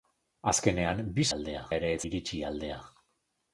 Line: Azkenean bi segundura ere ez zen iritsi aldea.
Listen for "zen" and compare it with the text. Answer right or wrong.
wrong